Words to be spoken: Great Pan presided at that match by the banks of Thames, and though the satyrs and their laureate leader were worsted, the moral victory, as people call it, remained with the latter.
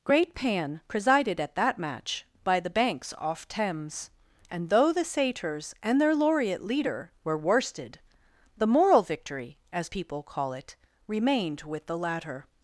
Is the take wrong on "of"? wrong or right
wrong